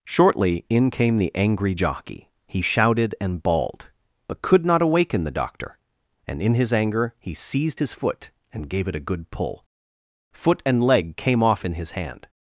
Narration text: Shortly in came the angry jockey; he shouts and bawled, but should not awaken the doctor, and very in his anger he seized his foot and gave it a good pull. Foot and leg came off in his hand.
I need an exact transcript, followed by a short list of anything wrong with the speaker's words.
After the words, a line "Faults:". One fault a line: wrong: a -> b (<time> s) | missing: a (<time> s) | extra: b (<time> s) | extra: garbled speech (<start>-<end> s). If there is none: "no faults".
Shortly in came the angry jockey; he shouted and bawled, but could not awaken the doctor, and in his anger he seized his foot and gave it a good pull. Foot and leg came off in his hand.
Faults:
wrong: shouts -> shouted (2.6 s)
wrong: should -> could (4.4 s)
missing: very (6.4 s)